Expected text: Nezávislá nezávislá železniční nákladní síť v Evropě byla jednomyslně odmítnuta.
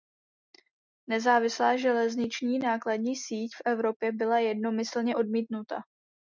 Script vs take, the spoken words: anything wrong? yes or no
yes